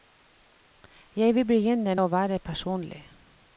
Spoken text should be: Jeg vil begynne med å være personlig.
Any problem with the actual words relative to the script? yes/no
yes